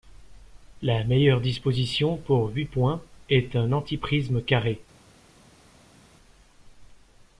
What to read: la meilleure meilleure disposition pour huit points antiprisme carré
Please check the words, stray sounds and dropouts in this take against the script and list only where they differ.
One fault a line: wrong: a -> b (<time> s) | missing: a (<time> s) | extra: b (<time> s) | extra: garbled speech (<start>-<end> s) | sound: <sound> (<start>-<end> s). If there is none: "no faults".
missing: meilleure (1.4 s)
extra: est un (3.3 s)